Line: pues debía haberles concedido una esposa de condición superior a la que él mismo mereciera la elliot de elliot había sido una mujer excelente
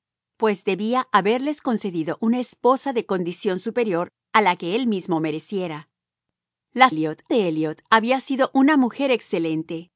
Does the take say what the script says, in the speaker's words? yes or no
yes